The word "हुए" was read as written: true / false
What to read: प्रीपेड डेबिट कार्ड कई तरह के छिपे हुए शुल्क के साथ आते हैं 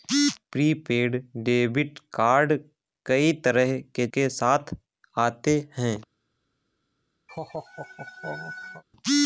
false